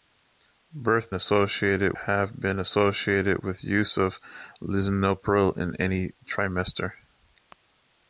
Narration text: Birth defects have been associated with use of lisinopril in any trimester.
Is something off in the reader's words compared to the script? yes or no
yes